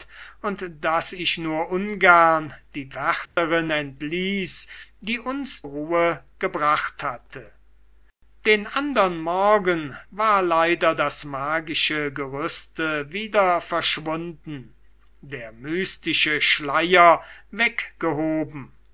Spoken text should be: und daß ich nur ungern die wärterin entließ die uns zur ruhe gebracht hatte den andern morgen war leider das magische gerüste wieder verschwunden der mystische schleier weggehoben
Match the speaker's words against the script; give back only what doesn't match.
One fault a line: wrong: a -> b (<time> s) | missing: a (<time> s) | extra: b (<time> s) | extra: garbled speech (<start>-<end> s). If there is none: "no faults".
missing: zur (5.7 s)